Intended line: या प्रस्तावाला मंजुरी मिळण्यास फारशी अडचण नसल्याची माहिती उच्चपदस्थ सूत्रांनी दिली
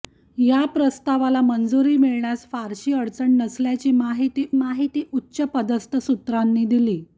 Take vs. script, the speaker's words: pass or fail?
fail